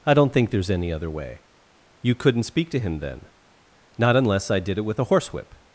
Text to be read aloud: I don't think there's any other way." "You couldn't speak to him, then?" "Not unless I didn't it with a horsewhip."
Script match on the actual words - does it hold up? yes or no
no